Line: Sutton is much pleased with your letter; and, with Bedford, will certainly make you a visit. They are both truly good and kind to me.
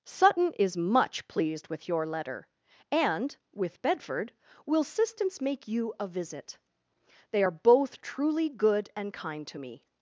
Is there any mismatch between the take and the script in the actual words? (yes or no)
yes